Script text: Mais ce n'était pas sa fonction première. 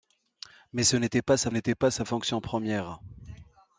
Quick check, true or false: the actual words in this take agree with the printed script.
false